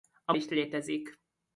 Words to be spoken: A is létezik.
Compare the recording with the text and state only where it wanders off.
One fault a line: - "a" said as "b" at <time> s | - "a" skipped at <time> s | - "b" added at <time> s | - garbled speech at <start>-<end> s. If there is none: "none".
none